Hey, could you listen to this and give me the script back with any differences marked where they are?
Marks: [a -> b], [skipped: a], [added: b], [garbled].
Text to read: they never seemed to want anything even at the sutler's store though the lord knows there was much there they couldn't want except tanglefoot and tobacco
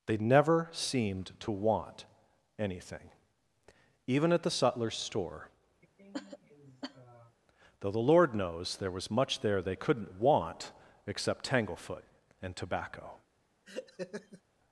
they never seemed to want anything even at the sutler's store though the lord knows there was much there they couldn't want except tanglefoot and tobacco